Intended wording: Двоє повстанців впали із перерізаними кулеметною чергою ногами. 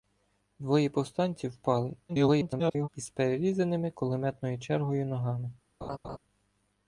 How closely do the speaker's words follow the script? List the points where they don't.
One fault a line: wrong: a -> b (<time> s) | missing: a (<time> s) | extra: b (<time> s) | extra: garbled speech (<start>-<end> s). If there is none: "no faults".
extra: garbled speech (2.1-2.9 s)